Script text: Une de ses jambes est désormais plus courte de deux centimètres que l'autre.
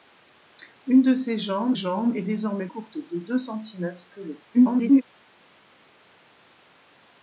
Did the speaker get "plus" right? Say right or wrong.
wrong